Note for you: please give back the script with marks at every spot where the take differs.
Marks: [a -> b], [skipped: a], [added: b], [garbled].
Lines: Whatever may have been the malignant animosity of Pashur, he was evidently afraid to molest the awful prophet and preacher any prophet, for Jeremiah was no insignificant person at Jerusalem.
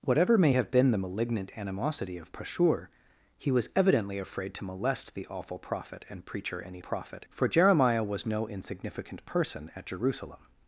Whatever may have been the malignant animosity of Pashur, he was evidently afraid to molest the awful prophet and preacher any prophet, for Jeremiah was no insignificant person at Jerusalem.